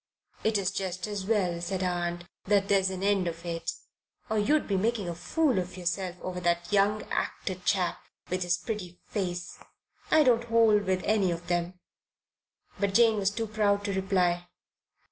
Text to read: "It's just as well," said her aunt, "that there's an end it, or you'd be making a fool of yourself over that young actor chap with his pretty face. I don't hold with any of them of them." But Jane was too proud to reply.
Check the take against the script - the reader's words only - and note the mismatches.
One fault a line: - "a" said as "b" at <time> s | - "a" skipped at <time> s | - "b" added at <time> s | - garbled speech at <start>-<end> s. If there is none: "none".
- "of" added at 3.3 s
- "of them" skipped at 11.8 s